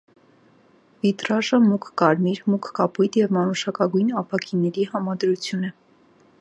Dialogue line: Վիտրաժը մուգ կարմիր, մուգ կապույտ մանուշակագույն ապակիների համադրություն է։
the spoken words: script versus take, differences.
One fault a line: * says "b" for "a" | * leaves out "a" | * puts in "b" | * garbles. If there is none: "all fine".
* puts in "և"